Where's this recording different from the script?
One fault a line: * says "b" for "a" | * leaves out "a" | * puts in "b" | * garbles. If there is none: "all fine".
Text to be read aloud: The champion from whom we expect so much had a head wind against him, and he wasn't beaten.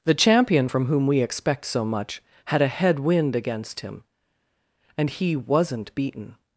all fine